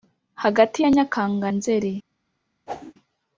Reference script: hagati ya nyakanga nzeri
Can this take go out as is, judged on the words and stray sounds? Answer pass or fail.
fail